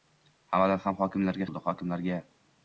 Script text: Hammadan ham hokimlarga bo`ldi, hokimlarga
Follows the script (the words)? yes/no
yes